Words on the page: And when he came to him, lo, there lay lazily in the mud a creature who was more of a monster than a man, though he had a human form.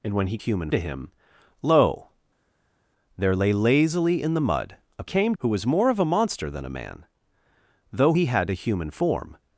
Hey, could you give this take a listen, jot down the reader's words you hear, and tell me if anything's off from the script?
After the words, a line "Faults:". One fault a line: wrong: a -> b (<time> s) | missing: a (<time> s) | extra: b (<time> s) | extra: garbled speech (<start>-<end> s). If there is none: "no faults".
And when he human to him, lo, there lay lazily in the mud a came who was more of a monster than a man, though he had a human form.
Faults:
wrong: came -> human (0.4 s)
wrong: creature -> came (5.0 s)